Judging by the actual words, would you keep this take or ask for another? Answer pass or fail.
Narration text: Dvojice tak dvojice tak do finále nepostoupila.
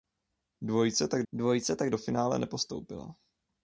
pass